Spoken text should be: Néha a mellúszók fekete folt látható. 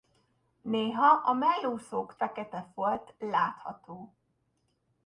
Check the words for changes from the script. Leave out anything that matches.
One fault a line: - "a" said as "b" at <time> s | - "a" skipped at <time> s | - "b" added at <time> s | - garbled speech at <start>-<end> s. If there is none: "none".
none